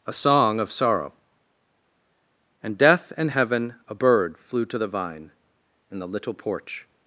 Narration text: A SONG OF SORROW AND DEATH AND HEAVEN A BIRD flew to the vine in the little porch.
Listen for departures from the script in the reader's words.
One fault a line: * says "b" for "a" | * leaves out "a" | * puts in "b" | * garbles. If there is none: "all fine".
all fine